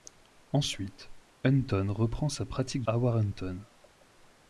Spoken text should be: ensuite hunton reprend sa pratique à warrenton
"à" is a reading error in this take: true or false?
false